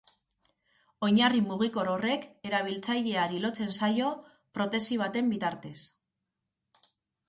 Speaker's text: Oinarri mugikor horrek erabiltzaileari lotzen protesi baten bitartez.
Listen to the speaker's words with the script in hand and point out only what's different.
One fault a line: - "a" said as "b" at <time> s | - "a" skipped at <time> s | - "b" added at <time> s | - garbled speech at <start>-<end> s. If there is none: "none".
- "zaio" added at 3.8 s